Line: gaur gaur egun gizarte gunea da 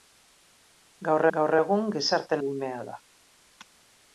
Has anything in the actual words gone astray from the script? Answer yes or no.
no